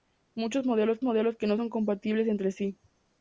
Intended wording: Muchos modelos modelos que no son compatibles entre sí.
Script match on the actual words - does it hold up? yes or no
yes